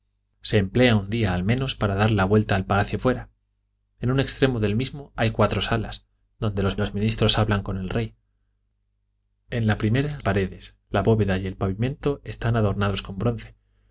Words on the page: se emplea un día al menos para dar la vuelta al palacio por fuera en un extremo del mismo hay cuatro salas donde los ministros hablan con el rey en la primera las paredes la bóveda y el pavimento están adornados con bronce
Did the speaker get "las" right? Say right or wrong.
wrong